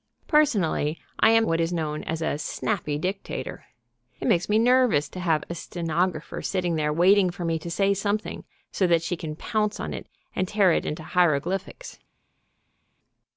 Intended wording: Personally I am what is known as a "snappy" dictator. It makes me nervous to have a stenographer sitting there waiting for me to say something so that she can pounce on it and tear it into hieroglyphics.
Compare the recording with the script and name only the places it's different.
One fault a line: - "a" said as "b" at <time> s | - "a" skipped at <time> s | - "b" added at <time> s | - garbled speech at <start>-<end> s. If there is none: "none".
none